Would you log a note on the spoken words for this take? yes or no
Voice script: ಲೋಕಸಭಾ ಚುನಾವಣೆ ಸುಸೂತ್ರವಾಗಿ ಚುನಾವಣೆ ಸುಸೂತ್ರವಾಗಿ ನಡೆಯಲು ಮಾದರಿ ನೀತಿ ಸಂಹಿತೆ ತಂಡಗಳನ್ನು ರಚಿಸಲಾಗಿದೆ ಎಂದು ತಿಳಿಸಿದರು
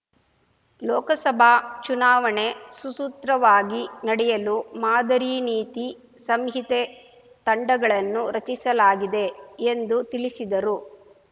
yes